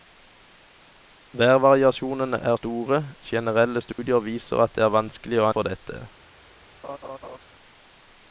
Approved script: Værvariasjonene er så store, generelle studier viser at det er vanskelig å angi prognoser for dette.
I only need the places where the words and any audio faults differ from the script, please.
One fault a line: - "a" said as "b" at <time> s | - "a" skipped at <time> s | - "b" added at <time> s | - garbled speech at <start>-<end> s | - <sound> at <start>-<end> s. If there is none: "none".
- "så" skipped at 2.5 s
- dropout at 3.9-4.0 s
- "angi prognoser" skipped at 5.5 s
- laugh at 6.8-7.4 s